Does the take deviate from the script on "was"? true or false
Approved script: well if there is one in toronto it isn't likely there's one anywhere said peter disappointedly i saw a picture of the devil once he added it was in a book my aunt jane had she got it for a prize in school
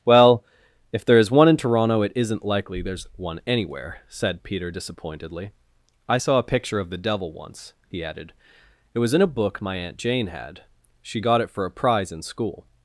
false